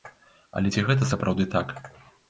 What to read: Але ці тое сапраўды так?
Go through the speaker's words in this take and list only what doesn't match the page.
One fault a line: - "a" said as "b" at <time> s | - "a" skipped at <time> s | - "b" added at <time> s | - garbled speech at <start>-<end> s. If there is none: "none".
- "тое" said as "гэта" at 0.9 s